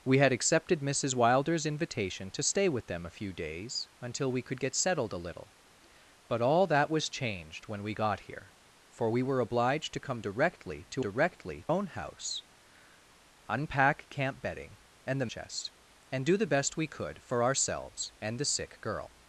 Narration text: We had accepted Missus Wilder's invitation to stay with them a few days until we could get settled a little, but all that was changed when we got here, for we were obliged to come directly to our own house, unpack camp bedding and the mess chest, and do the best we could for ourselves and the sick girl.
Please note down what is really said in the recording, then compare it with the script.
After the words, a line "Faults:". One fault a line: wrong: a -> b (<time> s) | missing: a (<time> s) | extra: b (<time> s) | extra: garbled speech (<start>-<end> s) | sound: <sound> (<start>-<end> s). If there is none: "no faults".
We had accepted Missus Wilder's invitation to stay with them a few days until we could get settled a little, but all that was changed when we got here, for we were obliged to come directly to directly own house, unpack camp bedding and the chest, and do the best we could for ourselves and the sick girl.
Faults:
wrong: our -> directly (11.0 s)
missing: mess (15.3 s)